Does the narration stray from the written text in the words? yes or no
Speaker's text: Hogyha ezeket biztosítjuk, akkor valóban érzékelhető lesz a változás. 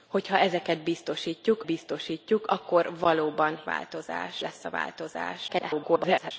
yes